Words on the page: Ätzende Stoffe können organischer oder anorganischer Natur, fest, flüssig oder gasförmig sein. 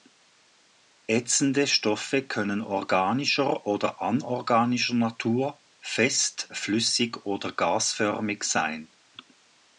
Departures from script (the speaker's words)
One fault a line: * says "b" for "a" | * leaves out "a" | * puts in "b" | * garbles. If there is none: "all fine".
all fine